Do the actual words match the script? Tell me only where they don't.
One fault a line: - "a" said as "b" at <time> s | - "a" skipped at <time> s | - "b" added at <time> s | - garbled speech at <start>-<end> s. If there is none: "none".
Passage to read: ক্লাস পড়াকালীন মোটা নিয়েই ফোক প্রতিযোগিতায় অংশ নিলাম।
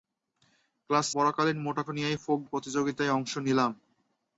none